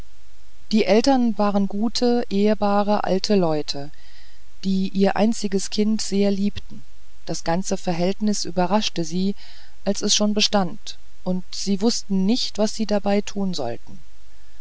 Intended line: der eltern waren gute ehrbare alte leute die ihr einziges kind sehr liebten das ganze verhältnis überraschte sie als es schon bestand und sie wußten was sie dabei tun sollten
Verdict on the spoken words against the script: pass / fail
fail